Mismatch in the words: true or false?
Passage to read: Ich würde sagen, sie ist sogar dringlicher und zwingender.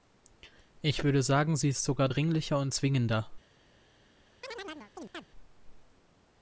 false